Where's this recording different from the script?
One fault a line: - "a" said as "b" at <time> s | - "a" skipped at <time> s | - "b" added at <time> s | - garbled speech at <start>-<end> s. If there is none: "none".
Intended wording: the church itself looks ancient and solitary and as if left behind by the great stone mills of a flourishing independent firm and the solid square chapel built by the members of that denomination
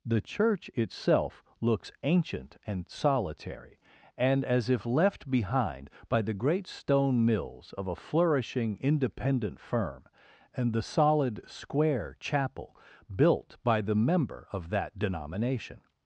- "members" said as "member" at 13.9 s